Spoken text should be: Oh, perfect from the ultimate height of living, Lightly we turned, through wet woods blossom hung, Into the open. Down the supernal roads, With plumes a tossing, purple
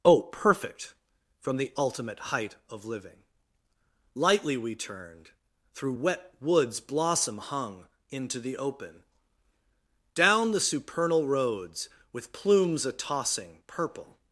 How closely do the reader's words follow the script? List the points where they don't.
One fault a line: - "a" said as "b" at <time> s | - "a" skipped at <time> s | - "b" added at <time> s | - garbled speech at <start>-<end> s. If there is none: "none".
none